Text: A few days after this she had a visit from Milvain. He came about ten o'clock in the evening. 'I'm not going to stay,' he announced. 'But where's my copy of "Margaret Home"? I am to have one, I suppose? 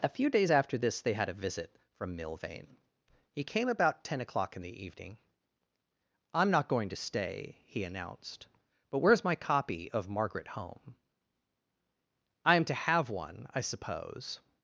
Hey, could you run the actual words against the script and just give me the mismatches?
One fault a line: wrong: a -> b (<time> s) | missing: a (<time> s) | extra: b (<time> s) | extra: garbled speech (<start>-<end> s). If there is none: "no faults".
wrong: she -> they (1.0 s)